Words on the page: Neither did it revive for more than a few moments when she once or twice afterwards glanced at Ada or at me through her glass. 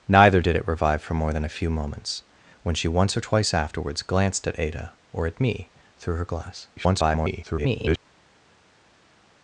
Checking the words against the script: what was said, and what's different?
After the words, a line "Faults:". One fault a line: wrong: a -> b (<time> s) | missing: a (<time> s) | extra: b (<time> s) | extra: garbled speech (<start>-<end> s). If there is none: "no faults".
Neither did it revive for more than a few moments when she once or twice afterwards glanced at Ada or at me through her glass. [garbled]
Faults:
extra: garbled speech (6.8-8.0 s)